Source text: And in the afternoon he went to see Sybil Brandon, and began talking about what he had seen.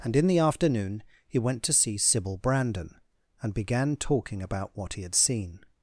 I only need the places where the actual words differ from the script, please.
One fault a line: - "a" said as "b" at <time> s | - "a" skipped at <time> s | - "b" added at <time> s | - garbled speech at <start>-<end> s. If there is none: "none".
none